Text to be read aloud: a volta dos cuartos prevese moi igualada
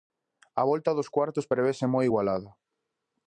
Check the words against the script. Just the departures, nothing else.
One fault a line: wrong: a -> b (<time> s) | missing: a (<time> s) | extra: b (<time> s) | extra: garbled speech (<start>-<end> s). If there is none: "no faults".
no faults